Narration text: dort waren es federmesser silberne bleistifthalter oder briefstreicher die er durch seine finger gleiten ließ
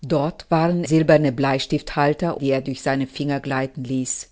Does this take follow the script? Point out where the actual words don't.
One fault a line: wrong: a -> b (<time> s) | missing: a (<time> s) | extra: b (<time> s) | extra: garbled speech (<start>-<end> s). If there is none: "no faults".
missing: es federmesser (0.8 s)
missing: oder briefstreicher (2.4 s)